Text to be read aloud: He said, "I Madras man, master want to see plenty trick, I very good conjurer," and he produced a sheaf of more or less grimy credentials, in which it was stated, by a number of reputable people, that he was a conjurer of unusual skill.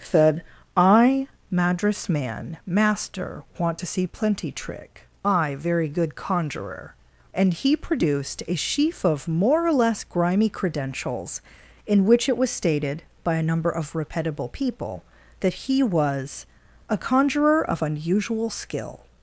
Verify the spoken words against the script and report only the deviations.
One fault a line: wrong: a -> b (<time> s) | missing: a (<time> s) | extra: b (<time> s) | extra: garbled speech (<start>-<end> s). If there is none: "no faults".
missing: He (0.0 s)